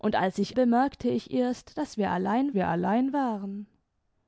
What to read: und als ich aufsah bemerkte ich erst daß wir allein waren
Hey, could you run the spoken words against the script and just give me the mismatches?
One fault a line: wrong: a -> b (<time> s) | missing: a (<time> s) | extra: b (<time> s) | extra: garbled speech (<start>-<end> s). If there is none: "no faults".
missing: aufsah (0.6 s)
extra: wir allein (2.5 s)